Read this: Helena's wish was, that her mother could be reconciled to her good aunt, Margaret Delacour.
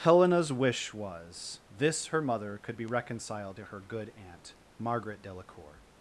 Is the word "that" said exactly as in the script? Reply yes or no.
no